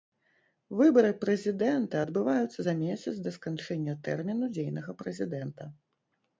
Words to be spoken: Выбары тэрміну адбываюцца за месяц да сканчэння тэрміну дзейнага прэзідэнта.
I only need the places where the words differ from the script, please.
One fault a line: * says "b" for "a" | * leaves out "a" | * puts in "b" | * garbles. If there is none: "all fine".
* says "прэзідэнта" for "тэрміну"